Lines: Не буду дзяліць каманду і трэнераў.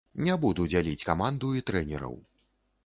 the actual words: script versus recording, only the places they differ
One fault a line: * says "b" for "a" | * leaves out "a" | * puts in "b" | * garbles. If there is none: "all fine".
all fine